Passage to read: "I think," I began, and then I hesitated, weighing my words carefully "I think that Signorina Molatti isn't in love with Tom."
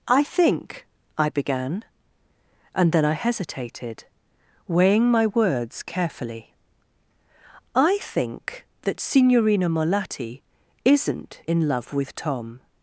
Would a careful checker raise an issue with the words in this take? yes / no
no